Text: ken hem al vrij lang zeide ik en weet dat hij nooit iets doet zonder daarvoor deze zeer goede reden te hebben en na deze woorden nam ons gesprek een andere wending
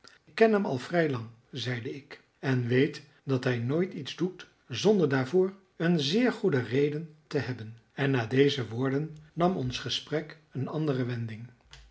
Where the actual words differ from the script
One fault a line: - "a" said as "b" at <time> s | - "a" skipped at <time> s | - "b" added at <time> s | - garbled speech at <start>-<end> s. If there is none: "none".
- "deze" said as "een" at 5.8 s